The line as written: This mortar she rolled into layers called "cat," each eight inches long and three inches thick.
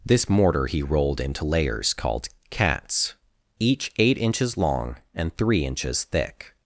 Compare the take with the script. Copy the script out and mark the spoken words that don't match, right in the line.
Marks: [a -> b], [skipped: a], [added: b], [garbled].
This mortar [she -> he] rolled into layers called ["cat," -> cats] each eight inches long and three inches thick.